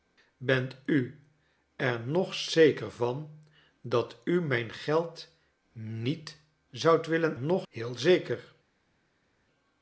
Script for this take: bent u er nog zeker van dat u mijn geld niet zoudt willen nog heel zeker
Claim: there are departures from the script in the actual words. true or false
false